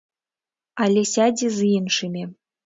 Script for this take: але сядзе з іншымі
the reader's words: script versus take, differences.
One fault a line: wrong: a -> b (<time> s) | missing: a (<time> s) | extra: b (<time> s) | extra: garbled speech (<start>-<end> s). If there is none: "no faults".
no faults